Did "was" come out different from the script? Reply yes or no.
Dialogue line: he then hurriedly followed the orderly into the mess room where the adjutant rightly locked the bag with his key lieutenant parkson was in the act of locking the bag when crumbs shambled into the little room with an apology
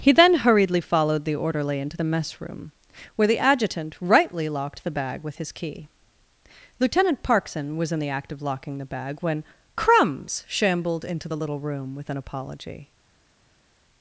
no